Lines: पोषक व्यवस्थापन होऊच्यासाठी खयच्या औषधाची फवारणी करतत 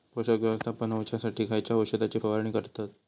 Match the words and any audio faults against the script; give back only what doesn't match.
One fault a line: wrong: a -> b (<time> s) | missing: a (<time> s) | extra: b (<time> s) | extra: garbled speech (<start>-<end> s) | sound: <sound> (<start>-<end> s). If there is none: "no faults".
no faults